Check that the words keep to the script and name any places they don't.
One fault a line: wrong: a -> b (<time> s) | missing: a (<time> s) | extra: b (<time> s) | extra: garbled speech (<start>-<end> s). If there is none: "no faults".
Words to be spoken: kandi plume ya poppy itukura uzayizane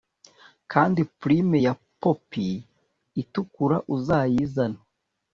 no faults